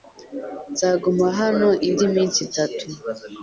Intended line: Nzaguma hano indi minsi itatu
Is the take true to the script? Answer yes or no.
yes